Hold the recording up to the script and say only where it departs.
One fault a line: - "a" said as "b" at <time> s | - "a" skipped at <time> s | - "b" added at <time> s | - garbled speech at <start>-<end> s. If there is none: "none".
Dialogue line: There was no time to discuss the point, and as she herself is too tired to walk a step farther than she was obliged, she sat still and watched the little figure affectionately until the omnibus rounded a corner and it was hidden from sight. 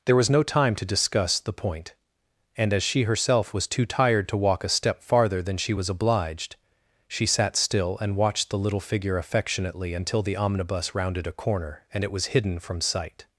- "is" said as "was" at 3.5 s